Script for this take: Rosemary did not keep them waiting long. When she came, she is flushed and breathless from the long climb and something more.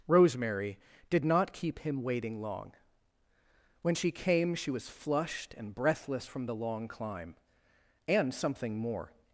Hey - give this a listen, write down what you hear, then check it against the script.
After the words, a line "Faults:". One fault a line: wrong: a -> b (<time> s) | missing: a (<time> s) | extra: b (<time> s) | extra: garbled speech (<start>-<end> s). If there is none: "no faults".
Rosemary did not keep him waiting long. When she came, she was flushed and breathless from the long climb and something more.
Faults:
wrong: them -> him (1.8 s)
wrong: is -> was (4.7 s)